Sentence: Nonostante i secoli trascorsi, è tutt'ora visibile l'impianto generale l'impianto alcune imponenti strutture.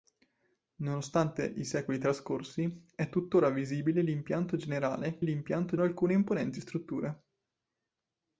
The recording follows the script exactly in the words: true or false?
true